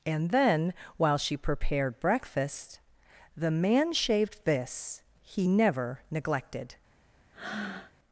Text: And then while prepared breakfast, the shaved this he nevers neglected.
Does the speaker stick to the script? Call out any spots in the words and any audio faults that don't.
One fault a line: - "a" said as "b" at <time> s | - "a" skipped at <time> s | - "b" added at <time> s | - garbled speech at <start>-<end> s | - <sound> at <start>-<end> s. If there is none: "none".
- "she" added at 1.2 s
- "man" added at 3.5 s
- "nevers" said as "never" at 5.4 s
- breath at 7.3-7.9 s